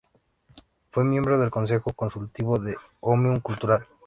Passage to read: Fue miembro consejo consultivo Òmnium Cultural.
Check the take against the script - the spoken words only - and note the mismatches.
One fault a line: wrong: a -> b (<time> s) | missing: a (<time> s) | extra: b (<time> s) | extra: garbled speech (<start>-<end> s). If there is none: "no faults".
extra: del (1.4 s)
extra: de (2.6 s)